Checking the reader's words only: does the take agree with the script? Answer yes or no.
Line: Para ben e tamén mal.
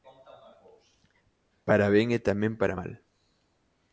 no